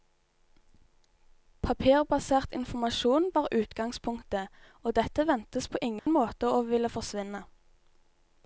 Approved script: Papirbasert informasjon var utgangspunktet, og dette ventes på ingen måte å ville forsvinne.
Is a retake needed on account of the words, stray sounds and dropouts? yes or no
yes